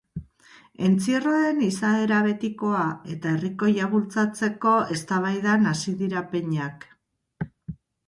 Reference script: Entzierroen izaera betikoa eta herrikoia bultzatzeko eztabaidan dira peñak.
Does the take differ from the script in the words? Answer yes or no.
yes